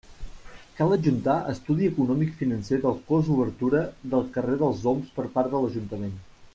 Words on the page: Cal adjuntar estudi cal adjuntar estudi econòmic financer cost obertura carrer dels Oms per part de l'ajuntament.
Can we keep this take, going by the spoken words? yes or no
no